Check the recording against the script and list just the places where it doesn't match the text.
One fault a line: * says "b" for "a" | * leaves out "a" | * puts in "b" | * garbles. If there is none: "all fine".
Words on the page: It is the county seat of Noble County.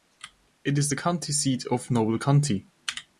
all fine